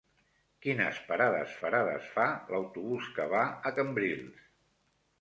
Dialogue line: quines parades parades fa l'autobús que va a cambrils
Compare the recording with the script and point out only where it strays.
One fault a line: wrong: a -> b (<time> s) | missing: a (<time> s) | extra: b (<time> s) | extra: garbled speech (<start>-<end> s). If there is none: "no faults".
no faults